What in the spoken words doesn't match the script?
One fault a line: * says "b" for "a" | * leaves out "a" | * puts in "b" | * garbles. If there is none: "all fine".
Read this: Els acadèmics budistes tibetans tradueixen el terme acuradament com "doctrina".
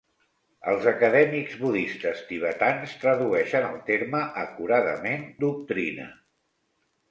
* leaves out "com"